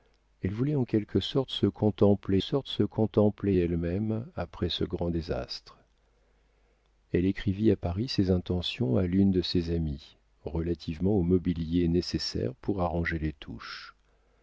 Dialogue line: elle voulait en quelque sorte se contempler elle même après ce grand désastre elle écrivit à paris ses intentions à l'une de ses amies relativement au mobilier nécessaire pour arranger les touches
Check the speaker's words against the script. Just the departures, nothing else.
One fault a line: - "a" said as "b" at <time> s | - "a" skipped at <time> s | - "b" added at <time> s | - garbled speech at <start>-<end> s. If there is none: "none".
- "sorte se contempler" added at 2.4 s